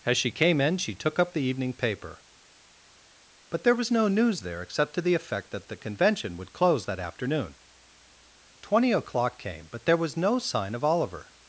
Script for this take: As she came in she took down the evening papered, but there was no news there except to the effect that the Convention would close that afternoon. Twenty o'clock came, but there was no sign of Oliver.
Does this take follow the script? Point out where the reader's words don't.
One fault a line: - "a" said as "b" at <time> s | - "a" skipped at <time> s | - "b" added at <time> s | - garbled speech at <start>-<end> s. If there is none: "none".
- "down" said as "up" at 1.2 s
- "papered" said as "paper" at 1.7 s